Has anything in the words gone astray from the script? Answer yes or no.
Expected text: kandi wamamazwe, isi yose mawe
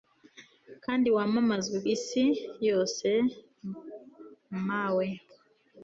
no